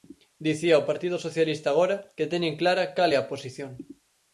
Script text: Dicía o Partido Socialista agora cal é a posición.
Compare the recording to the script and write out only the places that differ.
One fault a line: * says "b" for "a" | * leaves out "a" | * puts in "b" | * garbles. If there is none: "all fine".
* puts in "que teñen clara"